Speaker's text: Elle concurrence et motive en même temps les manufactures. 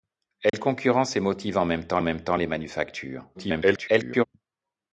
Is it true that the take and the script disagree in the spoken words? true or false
true